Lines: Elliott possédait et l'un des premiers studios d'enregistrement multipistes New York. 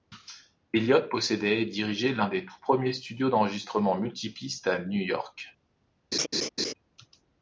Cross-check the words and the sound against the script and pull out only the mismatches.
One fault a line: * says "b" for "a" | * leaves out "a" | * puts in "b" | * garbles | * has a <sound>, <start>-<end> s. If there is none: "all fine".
* puts in "dirigeait"
* puts in "tout"
* puts in "à"
* has a laugh, 6.1-6.7 s